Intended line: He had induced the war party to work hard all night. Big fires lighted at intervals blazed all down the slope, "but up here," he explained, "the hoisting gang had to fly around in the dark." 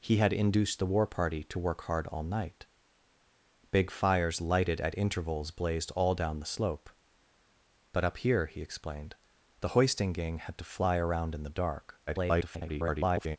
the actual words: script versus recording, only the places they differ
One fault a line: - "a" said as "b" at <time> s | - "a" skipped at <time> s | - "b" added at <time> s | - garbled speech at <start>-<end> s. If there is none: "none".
- garbled speech at 12.1-13.4 s